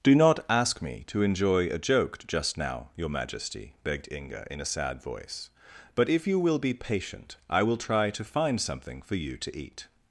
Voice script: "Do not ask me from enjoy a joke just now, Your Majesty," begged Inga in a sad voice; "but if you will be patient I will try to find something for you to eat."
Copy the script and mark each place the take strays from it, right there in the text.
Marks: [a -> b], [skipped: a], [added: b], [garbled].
"Do not ask me [from -> to] enjoy a joke just now, Your Majesty," begged Inga in a sad voice; "but if you will be patient I will try to find something for you to eat."